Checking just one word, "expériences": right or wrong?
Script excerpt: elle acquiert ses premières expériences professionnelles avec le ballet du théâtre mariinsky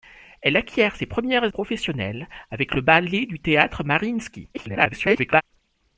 wrong